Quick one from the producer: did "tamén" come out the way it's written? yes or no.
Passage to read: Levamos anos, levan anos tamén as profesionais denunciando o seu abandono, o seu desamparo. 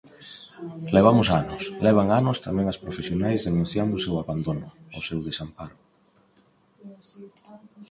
yes